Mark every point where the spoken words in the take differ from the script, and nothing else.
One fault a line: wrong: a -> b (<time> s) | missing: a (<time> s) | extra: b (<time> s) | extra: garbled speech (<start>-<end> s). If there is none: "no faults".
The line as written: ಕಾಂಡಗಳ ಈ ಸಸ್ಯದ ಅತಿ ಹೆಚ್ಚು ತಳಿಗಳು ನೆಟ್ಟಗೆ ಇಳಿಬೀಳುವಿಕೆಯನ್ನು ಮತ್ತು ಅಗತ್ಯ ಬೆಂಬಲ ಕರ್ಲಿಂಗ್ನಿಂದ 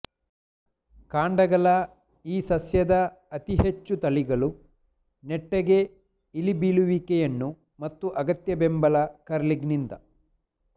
no faults